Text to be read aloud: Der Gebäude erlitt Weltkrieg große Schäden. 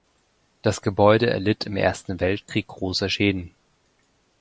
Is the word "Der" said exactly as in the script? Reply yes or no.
no